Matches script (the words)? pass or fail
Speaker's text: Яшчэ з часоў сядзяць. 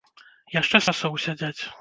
pass